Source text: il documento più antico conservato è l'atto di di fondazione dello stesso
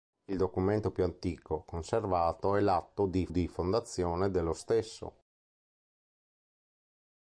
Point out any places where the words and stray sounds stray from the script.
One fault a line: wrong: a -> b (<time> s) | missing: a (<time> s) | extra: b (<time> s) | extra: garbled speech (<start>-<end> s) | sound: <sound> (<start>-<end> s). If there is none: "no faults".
no faults